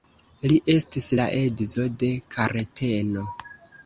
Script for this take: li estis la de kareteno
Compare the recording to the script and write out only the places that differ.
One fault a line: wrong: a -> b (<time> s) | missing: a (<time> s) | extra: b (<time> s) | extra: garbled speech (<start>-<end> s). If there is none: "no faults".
extra: edzo (1.4 s)